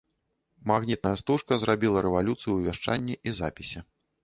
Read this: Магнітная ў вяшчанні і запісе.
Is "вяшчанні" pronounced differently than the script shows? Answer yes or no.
no